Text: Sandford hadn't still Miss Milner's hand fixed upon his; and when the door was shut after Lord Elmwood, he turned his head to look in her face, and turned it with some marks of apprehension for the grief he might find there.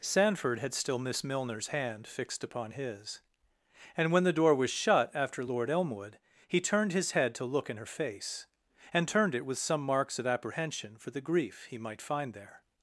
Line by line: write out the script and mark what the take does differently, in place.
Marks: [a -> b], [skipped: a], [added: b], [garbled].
Sandford [hadn't -> had] still Miss Milner's hand fixed upon his; and when the door was shut after Lord Elmwood, he turned his head to look in her face, and turned it with some marks of apprehension for the grief he might find there.